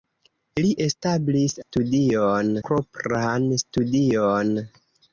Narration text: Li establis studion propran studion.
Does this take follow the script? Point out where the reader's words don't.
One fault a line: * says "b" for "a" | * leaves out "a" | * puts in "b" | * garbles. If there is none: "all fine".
all fine